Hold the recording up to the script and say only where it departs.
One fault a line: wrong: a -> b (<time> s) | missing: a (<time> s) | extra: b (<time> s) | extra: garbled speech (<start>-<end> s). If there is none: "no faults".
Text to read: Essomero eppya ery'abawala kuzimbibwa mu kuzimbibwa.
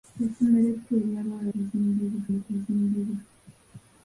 no faults